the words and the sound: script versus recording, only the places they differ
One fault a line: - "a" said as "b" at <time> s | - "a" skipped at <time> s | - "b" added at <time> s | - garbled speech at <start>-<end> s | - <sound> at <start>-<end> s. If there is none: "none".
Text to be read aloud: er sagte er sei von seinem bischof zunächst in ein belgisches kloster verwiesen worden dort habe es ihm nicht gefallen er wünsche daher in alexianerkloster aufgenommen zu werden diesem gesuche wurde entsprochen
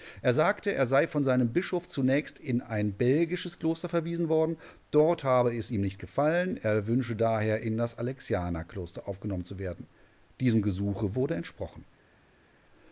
- "das" added at 7.8 s